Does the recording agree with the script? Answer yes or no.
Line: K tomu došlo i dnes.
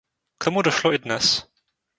yes